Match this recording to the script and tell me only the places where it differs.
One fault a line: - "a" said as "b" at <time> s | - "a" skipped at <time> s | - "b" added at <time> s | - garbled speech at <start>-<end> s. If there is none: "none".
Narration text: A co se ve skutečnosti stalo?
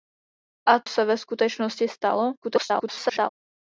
- "co" skipped at 0.8 s
- garbled speech at 2.4-3.3 s